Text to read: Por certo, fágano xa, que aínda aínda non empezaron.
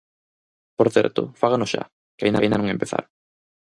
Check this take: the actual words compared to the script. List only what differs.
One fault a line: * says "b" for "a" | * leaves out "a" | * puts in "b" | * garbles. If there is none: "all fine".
all fine